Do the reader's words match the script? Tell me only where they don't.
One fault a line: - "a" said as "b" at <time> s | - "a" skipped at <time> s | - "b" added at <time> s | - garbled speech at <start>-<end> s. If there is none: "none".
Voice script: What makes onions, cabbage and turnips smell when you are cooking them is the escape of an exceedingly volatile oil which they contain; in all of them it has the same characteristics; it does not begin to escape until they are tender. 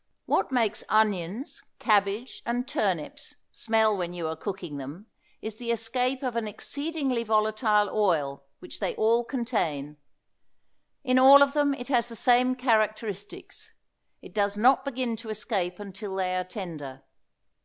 - "all" added at 8.9 s